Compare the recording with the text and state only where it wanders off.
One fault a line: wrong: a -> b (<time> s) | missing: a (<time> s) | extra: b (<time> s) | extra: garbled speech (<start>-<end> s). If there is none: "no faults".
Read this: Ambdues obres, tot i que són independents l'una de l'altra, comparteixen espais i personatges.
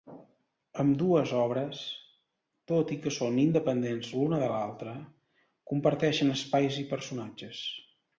no faults